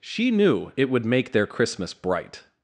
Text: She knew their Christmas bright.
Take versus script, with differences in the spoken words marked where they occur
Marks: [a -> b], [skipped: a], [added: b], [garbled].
She knew [added: it would make] their Christmas bright.